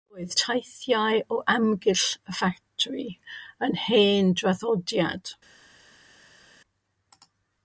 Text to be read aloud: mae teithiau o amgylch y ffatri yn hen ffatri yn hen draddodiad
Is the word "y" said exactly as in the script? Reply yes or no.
yes